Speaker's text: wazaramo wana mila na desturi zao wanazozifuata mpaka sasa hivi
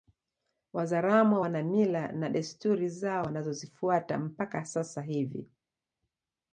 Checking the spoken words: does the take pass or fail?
pass